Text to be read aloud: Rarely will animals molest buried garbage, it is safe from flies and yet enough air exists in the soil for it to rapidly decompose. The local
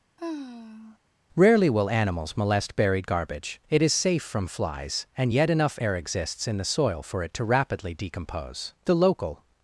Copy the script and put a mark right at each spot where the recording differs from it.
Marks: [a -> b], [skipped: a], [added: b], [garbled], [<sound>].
[sigh] Rarely will animals molest buried garbage, it is safe from flies and yet enough air exists in the soil for it to rapidly decompose. The local